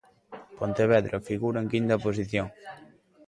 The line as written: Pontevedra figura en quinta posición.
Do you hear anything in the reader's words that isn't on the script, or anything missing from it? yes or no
no